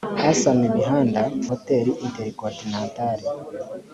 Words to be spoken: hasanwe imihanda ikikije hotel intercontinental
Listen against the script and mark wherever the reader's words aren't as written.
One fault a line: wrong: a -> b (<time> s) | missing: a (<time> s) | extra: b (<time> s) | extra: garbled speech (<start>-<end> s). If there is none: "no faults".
missing: ikikije (1.2 s)